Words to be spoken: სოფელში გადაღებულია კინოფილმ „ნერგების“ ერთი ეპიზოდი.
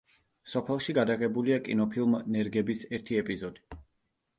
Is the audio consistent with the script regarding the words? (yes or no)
yes